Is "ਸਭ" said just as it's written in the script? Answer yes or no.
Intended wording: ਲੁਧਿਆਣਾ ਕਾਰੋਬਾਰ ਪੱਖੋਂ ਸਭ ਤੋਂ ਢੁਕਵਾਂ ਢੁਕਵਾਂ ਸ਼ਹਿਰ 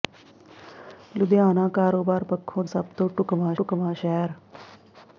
yes